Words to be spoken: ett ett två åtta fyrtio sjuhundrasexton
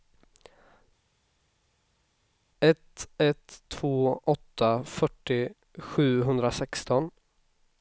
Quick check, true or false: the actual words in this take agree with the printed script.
true